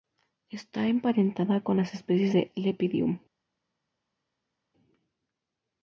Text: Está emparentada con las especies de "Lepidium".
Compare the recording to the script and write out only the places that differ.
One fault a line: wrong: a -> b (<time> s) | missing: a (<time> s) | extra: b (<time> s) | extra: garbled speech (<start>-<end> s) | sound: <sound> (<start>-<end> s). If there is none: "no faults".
no faults